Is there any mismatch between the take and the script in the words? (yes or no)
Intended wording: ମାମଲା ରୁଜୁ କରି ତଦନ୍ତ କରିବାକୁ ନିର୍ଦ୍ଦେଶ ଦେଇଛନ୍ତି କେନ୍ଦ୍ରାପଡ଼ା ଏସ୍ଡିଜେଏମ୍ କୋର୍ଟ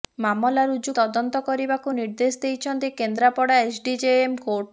yes